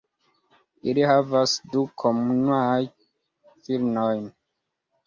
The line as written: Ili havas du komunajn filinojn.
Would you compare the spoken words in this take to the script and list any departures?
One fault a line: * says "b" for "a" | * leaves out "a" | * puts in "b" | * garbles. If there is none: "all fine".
all fine